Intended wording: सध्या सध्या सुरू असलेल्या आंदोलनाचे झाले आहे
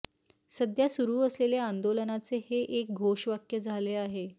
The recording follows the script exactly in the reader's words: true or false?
false